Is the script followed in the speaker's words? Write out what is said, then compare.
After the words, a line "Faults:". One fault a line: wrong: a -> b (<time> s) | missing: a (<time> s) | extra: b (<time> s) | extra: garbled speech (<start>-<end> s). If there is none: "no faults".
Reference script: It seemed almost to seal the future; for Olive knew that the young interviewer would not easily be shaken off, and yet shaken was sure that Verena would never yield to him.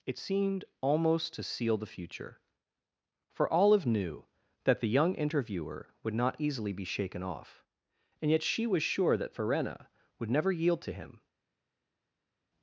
It seemed almost to seal the future; for Olive knew that the young interviewer would not easily be shaken off, and yet she was sure that Verena would never yield to him.
Faults:
wrong: shaken -> she (8.4 s)